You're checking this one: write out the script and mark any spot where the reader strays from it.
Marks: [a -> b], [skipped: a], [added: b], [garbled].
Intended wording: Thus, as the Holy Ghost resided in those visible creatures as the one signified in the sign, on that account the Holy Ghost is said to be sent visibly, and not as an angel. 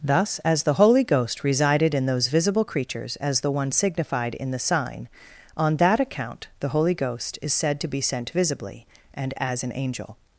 Thus, as the Holy Ghost resided in those visible creatures as the one signified in the sign, on that account the Holy Ghost is said to be sent visibly, and [skipped: not] as an angel.